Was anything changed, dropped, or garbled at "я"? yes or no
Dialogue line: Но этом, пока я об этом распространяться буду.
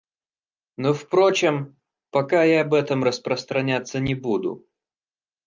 no